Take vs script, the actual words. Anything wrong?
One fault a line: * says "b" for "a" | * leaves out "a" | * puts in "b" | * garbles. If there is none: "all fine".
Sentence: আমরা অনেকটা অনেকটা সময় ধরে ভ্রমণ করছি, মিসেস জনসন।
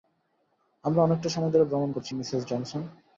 * leaves out "অনেকটা"